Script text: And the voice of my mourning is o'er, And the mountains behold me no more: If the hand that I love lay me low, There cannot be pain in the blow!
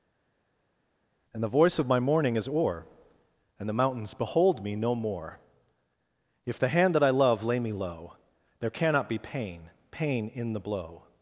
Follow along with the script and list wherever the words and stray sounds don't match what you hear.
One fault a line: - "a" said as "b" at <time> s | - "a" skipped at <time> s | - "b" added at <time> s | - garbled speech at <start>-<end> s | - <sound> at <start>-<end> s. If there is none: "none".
- "pain" added at 9.9 s